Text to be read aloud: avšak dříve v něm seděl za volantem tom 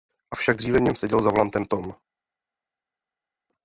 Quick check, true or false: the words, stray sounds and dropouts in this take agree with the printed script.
true